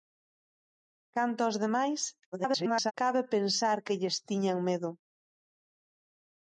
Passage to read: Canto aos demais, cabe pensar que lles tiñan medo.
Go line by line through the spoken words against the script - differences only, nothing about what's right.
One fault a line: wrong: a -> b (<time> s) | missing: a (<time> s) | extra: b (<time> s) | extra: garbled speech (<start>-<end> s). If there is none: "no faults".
extra: garbled speech (2.3-2.9 s)